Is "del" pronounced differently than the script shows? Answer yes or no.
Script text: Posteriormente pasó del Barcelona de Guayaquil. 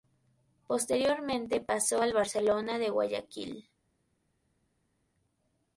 yes